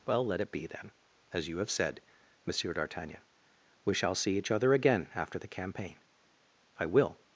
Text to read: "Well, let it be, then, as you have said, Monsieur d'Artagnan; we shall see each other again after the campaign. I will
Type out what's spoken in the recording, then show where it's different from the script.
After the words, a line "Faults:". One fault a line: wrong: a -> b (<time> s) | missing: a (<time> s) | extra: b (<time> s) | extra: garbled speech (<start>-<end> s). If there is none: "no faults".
"Well, let it be, then, as you have said, Monsieur d'Artagnan; we shall see each other again after the campaign. I will
Faults:
no faults